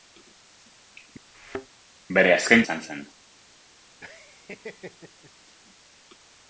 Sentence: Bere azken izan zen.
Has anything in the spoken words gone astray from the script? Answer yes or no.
no